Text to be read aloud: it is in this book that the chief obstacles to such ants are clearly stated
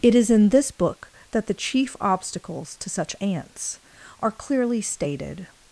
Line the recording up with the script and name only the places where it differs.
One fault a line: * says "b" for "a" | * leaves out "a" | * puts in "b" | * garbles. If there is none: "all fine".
all fine